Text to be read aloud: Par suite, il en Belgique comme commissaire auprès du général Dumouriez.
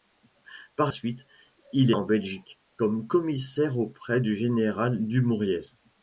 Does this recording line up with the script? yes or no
yes